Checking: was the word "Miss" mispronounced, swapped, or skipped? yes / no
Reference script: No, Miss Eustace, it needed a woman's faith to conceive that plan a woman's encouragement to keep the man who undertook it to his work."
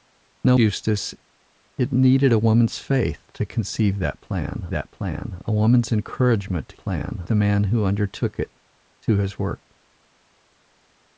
yes